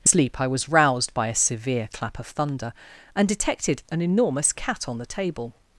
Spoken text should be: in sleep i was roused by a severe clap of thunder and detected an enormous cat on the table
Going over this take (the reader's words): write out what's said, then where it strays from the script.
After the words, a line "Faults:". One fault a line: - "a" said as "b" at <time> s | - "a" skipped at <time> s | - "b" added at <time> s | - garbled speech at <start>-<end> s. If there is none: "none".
in sleep i was roused by a severe clap of thunder and detected an enormous cat on the table
Faults:
none